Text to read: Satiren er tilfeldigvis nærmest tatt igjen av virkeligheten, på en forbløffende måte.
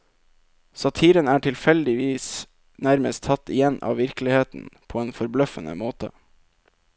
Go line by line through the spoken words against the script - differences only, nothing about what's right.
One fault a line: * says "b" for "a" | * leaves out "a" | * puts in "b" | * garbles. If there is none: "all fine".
all fine